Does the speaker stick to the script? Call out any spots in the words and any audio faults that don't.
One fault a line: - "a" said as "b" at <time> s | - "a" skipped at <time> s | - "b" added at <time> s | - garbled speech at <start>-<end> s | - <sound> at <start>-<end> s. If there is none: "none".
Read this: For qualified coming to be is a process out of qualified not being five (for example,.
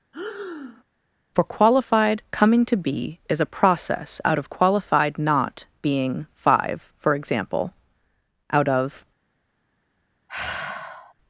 - breath at 0.1-0.8 s
- "out of" added at 8.5 s
- sigh at 10.3-11.1 s